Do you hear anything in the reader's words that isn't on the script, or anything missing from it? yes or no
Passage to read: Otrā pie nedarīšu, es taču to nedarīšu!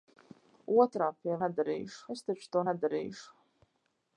no